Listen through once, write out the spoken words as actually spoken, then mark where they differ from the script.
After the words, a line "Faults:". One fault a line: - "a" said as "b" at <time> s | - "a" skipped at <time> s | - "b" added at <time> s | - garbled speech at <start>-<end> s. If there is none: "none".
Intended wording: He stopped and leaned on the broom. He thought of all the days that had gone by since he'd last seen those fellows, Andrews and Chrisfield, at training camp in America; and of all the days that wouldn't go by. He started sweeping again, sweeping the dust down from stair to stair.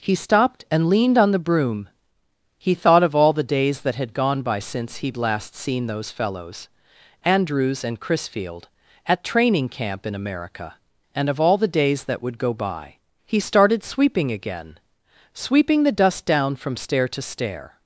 He stopped and leaned on the broom. He thought of all the days that had gone by since he'd last seen those fellows, Andrews and Chrisfield, at training camp in America; and of all the days that would go by. He started sweeping again, sweeping the dust down from stair to stair.
Faults:
- "wouldn't" said as "would" at 12.2 s